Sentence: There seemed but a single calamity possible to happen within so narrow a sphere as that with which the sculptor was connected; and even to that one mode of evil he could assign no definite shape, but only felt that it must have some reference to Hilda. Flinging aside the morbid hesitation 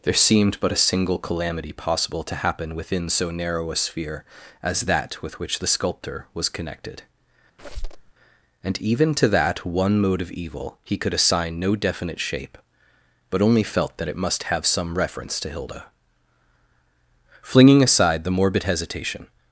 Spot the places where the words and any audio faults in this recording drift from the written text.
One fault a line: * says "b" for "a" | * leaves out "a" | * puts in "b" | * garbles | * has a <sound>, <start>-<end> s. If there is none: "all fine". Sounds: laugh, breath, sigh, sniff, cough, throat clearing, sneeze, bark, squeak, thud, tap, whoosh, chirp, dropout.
* has a squeak, 7.6-8.1 s